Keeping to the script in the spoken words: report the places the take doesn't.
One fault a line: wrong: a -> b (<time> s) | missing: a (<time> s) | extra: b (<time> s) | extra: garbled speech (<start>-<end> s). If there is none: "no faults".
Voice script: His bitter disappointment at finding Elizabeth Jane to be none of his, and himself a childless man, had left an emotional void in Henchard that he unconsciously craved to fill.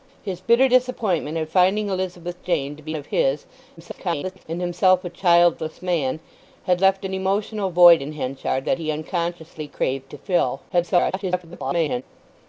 missing: none (3.0 s)
extra: garbled speech (3.8-4.5 s)
extra: garbled speech (10.7-12.0 s)